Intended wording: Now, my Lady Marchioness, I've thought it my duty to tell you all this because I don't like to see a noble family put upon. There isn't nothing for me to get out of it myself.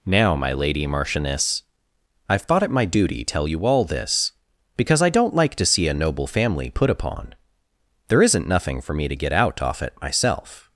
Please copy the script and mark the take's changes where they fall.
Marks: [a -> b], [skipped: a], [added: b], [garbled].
Now, my Lady Marchioness, I've thought it my duty [skipped: to] tell you all this because I don't like to see a noble family put upon. There isn't nothing for me to get out [of -> off] it myself.